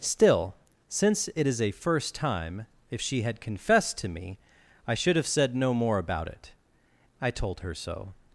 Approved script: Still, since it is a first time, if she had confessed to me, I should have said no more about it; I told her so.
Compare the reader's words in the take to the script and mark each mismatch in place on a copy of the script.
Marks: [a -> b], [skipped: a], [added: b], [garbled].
Still, since it is a first time, if she had confessed to me, I should have said no more about it; I told her so.